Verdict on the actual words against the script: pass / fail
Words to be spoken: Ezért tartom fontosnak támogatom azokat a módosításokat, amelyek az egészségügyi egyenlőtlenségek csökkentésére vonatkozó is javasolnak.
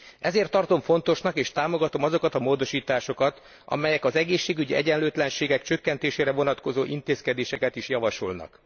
fail